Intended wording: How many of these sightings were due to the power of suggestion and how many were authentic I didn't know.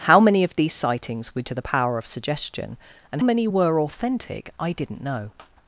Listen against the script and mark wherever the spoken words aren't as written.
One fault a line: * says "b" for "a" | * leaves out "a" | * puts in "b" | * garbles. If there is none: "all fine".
* leaves out "due"
* leaves out "how"